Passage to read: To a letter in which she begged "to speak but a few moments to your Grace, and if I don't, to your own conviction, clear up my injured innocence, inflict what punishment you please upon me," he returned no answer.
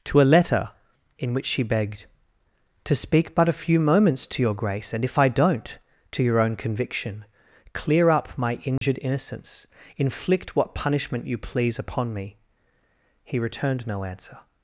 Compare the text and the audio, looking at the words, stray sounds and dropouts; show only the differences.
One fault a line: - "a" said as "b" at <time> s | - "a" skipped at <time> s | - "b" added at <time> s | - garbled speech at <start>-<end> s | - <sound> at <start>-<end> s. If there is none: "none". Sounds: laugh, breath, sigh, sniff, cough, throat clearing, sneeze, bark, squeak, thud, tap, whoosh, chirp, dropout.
- dropout at 8.8-8.8 s